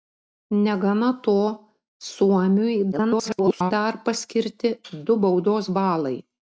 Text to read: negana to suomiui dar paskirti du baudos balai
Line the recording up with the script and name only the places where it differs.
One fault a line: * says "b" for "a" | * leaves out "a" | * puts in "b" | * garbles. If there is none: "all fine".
* garbles